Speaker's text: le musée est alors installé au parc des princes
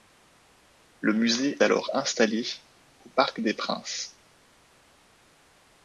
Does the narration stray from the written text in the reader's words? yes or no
yes